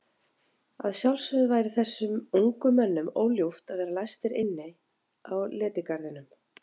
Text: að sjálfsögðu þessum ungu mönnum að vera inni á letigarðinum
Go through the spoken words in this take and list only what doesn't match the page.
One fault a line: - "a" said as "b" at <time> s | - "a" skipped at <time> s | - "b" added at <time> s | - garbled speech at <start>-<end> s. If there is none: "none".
- "væri" added at 1.5 s
- "óljúft" added at 3.2 s
- "læstir" added at 4.0 s